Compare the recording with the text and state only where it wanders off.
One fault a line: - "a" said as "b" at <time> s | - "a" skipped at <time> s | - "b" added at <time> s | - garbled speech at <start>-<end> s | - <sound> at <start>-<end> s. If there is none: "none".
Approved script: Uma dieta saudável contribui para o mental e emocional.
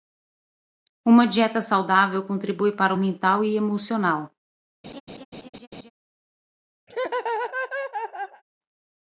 - laugh at 4.8-5.9 s
- laugh at 6.9-8.4 s